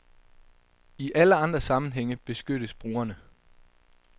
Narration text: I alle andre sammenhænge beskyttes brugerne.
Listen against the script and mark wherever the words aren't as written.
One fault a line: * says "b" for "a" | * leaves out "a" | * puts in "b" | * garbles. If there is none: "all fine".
all fine